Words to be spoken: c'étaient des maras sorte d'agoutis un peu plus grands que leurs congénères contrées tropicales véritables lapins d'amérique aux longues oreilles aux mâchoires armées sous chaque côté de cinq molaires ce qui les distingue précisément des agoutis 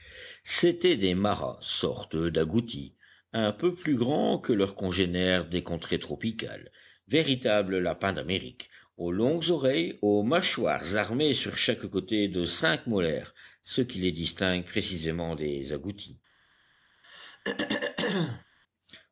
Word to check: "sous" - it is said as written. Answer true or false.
false